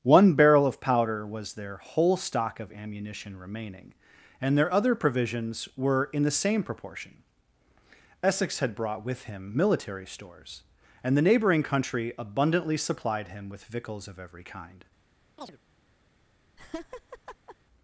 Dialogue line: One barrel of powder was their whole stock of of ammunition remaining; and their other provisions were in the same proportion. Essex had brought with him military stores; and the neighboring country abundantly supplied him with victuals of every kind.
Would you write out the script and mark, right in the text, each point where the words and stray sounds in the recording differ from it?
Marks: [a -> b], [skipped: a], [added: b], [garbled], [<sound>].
One barrel of powder was their whole stock of [skipped: of] ammunition remaining; and their other provisions were in the same proportion. Essex had brought with him military stores; and the neighboring country abundantly supplied him with victuals of every kind. [chirp] [laugh]